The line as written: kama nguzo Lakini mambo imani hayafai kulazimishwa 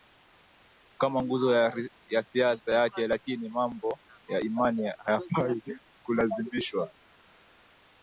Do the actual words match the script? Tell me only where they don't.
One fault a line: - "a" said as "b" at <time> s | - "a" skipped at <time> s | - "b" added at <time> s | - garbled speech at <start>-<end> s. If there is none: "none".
- "ya siasa yake" added at 2.1 s
- "ya" added at 4.3 s